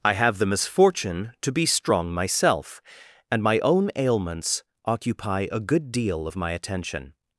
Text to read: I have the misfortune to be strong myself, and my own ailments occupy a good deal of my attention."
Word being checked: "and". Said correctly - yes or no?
yes